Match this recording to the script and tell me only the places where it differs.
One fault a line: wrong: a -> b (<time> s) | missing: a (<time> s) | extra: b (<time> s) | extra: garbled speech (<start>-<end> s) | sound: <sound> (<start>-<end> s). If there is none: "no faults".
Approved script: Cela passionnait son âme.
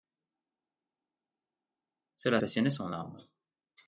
no faults